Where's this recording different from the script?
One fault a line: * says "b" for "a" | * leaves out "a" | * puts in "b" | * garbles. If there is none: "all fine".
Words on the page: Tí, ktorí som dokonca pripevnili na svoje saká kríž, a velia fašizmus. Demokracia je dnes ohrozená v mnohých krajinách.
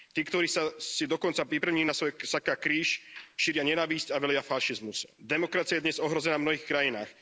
* says "si" for "som"
* puts in "šíria nenávisť"